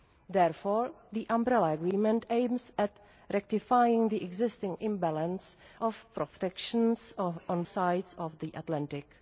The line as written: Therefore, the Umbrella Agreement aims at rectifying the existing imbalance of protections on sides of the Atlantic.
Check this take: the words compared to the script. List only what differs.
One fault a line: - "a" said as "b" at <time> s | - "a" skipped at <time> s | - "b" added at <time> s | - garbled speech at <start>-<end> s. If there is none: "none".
none